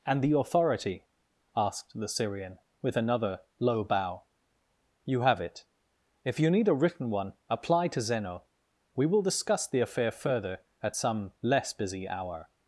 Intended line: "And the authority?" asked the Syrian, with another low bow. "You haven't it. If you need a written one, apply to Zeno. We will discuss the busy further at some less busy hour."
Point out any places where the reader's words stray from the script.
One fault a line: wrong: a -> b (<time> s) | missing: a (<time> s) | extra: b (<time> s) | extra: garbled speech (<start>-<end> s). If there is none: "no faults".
wrong: haven't -> have (5.2 s)
wrong: busy -> affair (9.8 s)